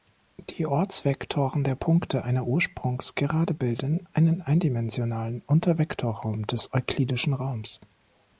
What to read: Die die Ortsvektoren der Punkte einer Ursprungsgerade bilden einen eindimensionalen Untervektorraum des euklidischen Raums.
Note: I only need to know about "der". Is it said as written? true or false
true